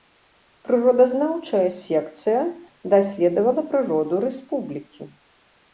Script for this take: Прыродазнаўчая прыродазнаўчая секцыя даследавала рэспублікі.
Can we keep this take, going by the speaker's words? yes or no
no